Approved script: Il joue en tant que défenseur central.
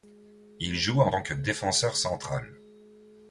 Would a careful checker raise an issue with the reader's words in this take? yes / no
no